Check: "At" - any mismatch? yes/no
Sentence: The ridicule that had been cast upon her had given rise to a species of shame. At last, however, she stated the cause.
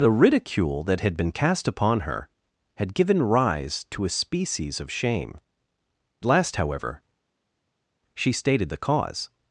yes